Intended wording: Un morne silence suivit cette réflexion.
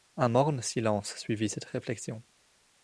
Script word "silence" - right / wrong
right